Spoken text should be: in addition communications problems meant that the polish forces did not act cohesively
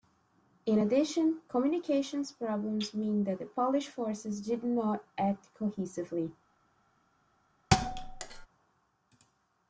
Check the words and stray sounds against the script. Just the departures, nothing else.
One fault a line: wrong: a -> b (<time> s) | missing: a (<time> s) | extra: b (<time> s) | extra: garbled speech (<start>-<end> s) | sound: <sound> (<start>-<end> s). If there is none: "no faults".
sound: thud (7.7-8.5 s)